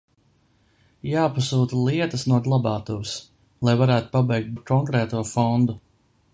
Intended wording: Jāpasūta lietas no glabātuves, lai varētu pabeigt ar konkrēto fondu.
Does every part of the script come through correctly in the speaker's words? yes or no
yes